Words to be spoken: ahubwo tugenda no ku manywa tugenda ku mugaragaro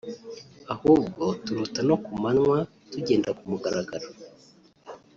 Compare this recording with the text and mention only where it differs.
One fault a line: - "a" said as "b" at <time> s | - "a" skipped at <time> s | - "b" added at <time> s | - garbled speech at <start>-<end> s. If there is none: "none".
- "tugenda" said as "turota" at 1.4 s